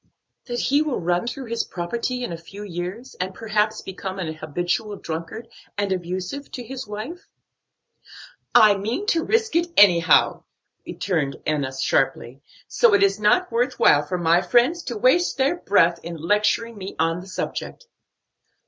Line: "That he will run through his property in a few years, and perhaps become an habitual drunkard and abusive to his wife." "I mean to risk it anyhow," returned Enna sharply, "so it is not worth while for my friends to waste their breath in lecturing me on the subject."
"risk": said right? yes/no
yes